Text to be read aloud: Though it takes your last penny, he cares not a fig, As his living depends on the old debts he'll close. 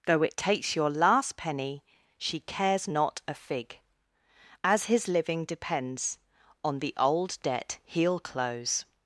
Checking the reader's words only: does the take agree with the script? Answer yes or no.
no